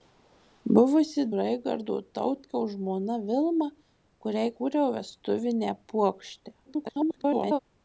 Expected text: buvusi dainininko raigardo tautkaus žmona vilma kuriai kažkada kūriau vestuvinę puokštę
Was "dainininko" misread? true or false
true